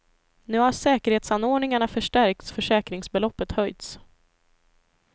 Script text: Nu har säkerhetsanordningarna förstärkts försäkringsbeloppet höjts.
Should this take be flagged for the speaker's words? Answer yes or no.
no